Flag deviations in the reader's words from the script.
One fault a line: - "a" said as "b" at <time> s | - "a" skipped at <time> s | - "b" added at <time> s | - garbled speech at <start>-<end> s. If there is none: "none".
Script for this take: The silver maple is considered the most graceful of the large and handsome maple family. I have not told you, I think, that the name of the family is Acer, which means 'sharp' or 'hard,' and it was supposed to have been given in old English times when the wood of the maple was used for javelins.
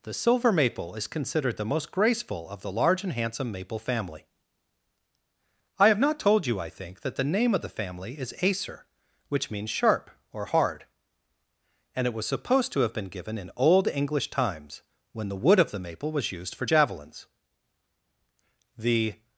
- "The" added at 18.8 s